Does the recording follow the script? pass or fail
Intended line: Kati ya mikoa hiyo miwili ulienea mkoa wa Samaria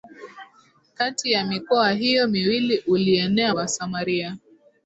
fail